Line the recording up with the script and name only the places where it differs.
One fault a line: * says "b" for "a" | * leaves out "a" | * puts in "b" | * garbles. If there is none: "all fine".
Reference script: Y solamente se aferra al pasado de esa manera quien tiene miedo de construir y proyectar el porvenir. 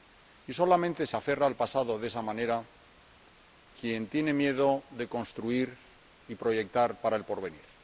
* puts in "para"